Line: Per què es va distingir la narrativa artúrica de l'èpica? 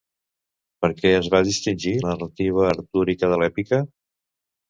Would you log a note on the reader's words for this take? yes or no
yes